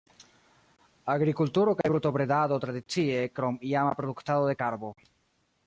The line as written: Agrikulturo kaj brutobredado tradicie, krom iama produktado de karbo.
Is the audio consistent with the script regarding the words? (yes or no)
yes